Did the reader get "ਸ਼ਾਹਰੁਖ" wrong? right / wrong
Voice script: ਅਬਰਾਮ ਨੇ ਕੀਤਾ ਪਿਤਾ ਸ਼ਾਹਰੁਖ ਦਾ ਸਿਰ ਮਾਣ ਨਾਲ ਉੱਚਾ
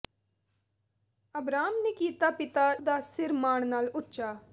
wrong